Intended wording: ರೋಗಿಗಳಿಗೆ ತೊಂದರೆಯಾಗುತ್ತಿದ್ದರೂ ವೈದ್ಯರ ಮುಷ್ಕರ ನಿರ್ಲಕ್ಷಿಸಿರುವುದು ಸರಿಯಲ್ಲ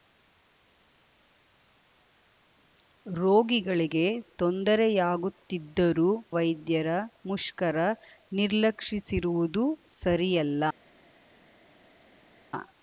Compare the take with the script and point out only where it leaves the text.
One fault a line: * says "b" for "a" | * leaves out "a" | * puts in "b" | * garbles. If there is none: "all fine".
all fine